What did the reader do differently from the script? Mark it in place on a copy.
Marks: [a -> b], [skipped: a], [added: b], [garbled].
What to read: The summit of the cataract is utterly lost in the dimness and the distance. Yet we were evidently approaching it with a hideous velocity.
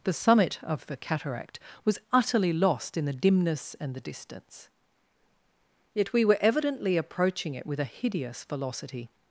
The summit of the cataract [is -> was] utterly lost in the dimness and the distance. Yet we were evidently approaching it with a hideous velocity.